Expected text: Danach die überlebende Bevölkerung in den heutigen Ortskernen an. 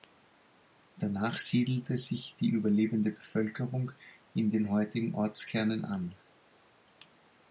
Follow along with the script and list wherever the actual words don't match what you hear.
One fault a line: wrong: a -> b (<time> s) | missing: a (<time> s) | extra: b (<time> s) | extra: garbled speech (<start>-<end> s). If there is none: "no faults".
extra: siedelte sich (1.4 s)